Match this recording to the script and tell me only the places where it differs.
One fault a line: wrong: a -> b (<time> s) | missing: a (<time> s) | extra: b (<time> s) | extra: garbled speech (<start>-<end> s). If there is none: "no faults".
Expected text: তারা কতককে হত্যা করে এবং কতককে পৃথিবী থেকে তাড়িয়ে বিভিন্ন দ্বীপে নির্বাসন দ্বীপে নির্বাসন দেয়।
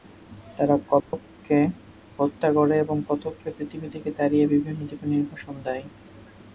missing: দ্বীপে নির্বাসন (5.5 s)